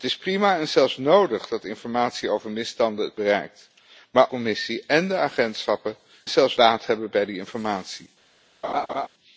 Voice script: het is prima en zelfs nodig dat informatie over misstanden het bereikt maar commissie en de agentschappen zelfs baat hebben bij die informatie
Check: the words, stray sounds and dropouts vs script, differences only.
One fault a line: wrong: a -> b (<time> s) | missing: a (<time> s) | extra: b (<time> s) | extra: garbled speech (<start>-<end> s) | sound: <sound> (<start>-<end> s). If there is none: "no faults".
sound: laugh (8.6-9.1 s)